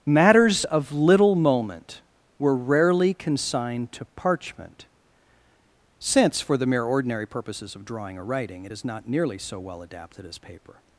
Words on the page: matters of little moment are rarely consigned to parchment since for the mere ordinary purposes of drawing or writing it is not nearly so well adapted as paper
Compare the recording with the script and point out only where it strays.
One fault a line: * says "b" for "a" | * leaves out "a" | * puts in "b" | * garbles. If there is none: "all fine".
* says "were" for "are"